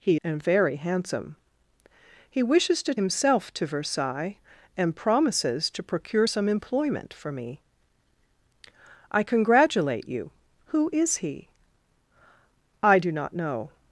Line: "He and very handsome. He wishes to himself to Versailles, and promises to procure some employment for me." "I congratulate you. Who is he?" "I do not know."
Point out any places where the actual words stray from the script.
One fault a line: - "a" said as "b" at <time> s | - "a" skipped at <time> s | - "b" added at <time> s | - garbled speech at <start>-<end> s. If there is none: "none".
none